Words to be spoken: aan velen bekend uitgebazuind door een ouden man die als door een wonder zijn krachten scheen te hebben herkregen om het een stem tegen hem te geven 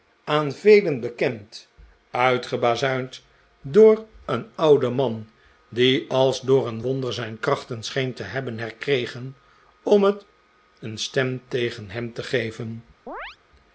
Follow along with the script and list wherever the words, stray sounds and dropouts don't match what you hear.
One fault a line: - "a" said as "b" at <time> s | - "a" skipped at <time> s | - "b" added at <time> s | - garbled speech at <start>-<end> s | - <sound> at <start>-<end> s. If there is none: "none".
- chirp at 13.1-13.4 s